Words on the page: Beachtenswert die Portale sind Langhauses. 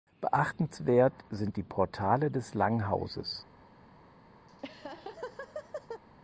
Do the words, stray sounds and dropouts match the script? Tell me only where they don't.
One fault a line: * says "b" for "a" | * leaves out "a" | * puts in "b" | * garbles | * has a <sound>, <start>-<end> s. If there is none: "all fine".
* puts in "sind"
* says "des" for "sind"
* has a laugh, 4.5-6.0 s